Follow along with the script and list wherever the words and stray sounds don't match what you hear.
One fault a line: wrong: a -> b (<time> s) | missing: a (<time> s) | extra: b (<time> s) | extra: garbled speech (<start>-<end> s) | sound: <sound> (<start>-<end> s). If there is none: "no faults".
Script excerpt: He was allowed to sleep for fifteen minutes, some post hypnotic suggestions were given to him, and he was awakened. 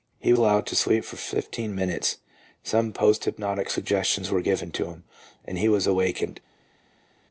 missing: was (0.3 s)